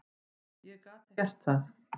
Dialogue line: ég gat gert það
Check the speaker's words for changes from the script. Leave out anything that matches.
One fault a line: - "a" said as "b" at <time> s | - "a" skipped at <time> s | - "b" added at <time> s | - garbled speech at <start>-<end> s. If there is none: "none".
none